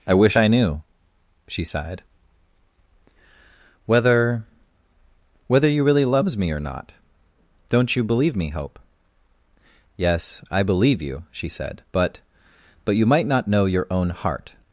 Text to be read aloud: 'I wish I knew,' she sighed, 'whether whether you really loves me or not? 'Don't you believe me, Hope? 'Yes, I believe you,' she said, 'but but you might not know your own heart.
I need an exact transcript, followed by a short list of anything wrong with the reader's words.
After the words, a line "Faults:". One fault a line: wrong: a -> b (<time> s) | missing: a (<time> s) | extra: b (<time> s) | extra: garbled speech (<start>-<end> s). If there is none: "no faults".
'I wish I knew,' she sighed, 'whether whether you really loves me or not? 'Don't you believe me, Hope? 'Yes, I believe you,' she said, 'but but you might not know your own heart.
Faults:
no faults